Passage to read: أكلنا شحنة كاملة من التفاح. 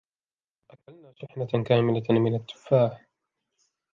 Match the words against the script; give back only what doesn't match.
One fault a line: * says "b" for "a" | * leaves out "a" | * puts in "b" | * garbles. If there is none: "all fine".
all fine